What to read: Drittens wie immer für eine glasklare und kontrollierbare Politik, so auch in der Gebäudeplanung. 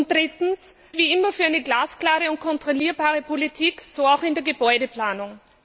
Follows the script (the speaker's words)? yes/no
yes